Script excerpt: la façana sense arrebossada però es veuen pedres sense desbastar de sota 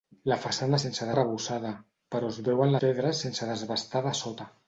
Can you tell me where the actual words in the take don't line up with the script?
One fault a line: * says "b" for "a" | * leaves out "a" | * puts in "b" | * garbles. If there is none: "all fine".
all fine